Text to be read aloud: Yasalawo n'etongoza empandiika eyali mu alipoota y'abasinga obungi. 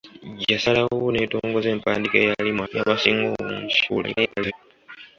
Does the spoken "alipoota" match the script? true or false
false